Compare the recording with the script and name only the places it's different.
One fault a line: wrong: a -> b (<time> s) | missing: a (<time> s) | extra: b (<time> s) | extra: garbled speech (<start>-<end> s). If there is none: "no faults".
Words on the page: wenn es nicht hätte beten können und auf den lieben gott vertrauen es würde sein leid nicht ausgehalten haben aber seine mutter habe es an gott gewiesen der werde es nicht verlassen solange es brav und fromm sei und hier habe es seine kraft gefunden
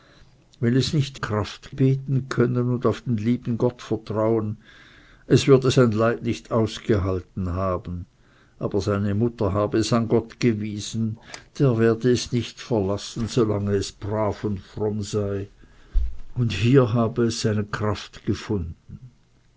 wrong: hätte -> kraft (1.1 s)